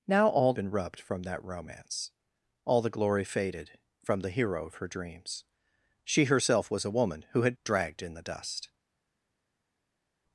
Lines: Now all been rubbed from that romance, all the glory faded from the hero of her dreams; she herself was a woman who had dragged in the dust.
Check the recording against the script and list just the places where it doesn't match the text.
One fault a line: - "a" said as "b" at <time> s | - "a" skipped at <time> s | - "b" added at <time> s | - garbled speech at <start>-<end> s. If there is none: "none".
none